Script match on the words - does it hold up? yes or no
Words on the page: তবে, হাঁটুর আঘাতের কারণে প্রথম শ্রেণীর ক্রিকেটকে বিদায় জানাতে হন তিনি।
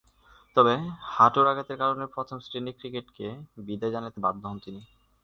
no